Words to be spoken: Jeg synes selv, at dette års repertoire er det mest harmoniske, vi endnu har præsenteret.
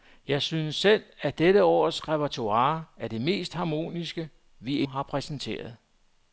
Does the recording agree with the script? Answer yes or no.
no